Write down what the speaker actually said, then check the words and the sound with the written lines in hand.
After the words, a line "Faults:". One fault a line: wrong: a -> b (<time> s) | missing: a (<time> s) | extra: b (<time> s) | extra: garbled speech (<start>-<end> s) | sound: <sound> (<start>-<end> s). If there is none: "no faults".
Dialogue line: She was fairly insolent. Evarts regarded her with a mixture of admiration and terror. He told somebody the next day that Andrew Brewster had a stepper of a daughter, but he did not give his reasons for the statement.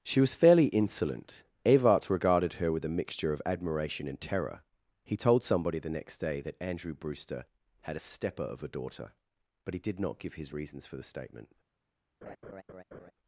She was fairly insolent. Evarts regarded her with a mixture of admiration and terror. He told somebody the next day that Andrew Brewster had a stepper of a daughter, but he did not give his reasons for the statement.
Faults:
sound: laugh (12.2-13.1 s)